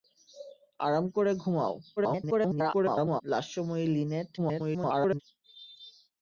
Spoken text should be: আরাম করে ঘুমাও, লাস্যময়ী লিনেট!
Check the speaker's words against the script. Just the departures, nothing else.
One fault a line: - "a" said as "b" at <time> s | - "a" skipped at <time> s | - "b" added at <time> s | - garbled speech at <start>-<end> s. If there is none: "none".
- garbled speech at 2.0-3.2 s
- garbled speech at 4.4-5.2 s